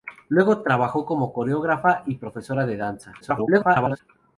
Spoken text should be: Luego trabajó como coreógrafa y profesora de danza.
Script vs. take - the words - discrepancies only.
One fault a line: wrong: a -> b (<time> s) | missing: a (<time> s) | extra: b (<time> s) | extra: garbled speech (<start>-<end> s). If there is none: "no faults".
extra: garbled speech (3.2-4.0 s)